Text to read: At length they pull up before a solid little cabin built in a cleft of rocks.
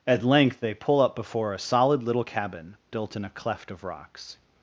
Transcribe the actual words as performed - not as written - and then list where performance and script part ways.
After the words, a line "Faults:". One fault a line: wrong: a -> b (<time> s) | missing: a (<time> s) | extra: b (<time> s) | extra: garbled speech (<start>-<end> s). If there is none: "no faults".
At length they pull up before a solid little cabin built in a cleft of rocks.
Faults:
no faults